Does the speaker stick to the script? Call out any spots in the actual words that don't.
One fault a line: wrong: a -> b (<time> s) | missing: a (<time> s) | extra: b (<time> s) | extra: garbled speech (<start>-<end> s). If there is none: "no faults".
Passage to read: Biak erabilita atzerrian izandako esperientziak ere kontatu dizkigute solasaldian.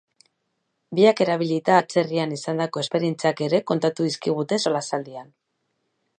no faults